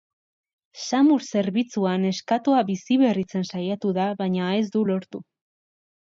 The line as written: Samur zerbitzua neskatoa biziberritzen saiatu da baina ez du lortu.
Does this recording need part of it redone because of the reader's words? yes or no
no